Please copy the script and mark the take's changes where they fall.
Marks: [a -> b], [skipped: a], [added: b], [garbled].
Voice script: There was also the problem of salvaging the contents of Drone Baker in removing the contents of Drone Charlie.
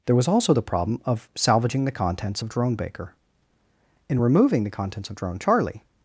There was also the problem of salvaging the contents of Drone Baker in removing the contents of Drone Charlie.